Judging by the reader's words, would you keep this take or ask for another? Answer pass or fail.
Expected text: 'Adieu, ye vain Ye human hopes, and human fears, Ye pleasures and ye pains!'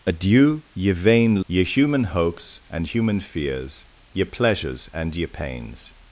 pass